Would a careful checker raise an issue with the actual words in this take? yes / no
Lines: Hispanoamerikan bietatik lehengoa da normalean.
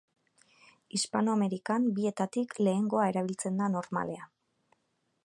yes